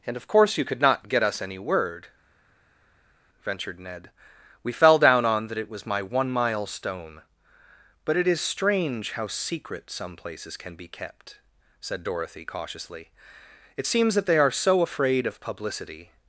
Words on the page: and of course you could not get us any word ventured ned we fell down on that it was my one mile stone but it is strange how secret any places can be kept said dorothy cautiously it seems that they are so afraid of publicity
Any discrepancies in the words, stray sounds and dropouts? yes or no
yes